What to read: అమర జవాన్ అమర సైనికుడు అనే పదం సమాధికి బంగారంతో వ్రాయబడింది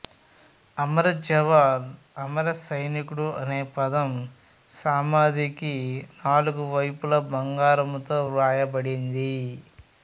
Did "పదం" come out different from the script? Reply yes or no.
no